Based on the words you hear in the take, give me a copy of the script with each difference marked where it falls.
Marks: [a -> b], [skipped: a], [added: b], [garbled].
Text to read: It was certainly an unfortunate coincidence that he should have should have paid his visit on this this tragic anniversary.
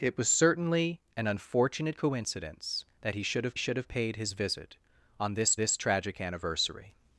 It was certainly an unfortunate coincidence that he should have should have paid his visit on this this tragic anniversary.